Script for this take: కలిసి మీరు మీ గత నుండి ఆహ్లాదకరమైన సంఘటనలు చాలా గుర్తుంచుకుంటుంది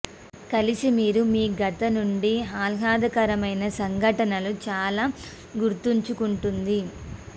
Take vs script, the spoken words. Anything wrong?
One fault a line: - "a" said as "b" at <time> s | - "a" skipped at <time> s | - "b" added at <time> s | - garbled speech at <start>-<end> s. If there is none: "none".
none